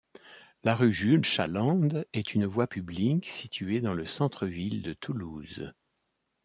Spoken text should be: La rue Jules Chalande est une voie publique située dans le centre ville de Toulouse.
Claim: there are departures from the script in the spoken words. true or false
false